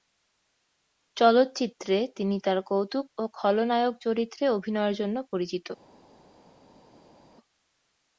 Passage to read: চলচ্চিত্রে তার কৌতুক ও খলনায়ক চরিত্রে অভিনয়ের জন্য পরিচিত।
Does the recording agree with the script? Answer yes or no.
no